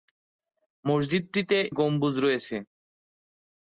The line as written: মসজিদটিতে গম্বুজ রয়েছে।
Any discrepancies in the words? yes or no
no